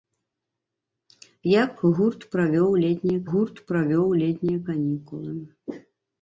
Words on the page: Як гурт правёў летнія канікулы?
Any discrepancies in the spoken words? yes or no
yes